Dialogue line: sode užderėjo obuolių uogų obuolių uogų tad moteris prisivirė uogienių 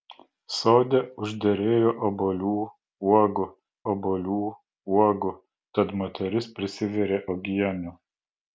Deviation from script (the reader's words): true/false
false